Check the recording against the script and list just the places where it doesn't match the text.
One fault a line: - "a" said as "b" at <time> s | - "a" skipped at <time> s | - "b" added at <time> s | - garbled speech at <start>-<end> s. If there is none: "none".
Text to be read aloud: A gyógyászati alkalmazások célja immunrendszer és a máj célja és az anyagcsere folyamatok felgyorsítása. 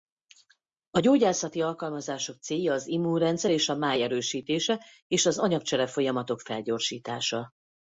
- "az" added at 2.7 s
- "célja" said as "erősítése" at 4.0 s